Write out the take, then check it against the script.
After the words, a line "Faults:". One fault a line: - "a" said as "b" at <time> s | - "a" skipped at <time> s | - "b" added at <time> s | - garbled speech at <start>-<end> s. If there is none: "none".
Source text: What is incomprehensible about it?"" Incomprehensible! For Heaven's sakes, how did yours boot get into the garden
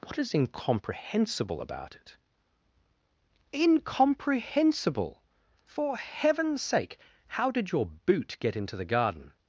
What is incomprehensible about it?"" Incomprehensible! For Heaven's sake, how did your boot get into the garden
Faults:
- "sakes" said as "sake" at 6.6 s
- "yours" said as "your" at 7.7 s